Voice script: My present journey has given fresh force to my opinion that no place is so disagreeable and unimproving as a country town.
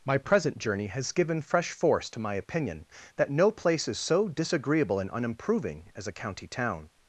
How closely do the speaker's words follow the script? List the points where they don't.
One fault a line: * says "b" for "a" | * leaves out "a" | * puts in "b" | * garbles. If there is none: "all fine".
* says "county" for "country"